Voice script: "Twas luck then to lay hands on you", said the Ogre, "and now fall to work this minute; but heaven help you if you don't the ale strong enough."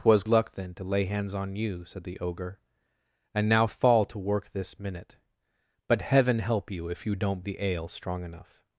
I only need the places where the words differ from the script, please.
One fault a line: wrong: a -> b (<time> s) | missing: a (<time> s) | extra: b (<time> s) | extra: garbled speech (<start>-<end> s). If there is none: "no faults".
no faults